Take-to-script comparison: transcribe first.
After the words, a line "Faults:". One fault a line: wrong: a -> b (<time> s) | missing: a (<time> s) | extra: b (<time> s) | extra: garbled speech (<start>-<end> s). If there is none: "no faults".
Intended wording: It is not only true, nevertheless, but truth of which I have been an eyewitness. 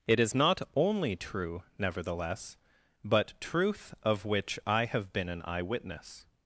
It is not only true, nevertheless, but truth of which I have been an eyewitness.
Faults:
no faults